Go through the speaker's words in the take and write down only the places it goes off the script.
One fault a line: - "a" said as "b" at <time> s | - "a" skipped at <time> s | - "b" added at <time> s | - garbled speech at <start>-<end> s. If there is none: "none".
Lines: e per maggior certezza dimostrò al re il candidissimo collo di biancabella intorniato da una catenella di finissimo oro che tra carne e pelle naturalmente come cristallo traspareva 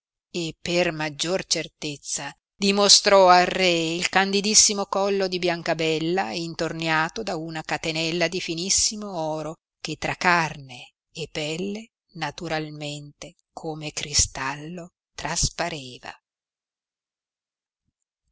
none